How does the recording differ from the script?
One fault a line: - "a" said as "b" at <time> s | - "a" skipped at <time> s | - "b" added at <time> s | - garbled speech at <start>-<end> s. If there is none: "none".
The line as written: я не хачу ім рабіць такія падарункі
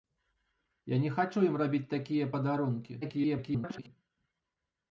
- garbled speech at 3.0-3.9 s